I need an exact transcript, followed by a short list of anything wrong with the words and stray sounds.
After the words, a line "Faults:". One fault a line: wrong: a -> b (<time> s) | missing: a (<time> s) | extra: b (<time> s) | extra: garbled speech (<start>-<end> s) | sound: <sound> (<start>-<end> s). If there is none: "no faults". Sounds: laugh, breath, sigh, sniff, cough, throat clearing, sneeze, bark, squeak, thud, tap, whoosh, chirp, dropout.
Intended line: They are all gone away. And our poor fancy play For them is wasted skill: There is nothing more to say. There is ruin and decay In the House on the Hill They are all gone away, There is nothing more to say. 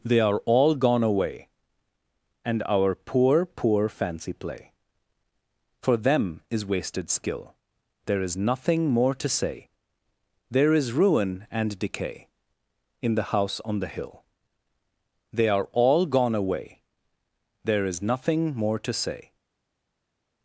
They are all gone away. And our poor poor fancy play For them is wasted skill: There is nothing more to say. There is ruin and decay In the House on the Hill They are all gone away, There is nothing more to say.
Faults:
extra: poor (3.5 s)